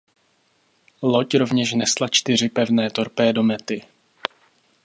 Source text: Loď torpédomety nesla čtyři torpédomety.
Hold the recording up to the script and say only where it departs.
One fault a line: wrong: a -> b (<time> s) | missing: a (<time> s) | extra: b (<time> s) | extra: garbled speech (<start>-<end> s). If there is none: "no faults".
wrong: torpédomety -> rovněž (1.4 s)
extra: pevné (2.5 s)